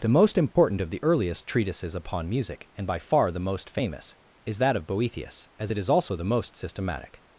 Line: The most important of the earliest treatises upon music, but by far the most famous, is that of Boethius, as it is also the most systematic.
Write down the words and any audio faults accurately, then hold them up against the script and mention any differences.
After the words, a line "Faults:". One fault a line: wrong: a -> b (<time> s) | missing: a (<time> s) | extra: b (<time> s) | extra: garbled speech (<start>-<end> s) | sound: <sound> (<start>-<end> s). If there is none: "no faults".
The most important of the earliest treatises upon music, and by far the most famous, is that of Boethius, as it is also the most systematic.
Faults:
sound: dropout (0.5-0.6 s)
wrong: but -> and (2.8 s)